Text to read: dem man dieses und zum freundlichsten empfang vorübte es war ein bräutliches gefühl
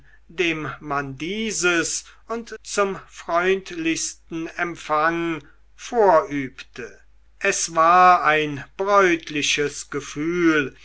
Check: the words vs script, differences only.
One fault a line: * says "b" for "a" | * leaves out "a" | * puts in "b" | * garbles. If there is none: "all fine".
all fine